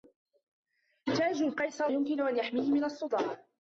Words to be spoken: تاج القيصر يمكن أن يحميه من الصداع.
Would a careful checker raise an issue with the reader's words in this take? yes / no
no